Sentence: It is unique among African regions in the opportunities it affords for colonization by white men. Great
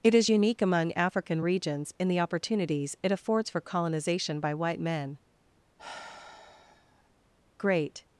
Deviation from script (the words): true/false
false